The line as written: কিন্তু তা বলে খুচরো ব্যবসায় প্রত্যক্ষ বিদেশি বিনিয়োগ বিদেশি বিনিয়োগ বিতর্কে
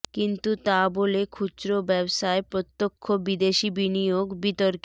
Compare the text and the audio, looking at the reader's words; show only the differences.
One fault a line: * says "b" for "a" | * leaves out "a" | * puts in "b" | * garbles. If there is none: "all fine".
* leaves out "বিদেশি বিনিয়োগ"